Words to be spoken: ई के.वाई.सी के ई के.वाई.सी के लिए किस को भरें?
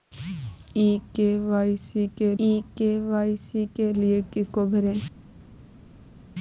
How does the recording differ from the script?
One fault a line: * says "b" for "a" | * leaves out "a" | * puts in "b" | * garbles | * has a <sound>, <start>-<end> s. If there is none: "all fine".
all fine